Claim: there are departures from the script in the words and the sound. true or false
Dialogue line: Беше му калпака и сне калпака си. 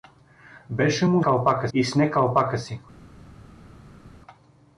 false